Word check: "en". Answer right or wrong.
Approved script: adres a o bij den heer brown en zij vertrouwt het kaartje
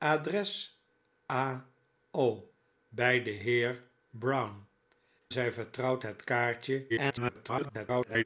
wrong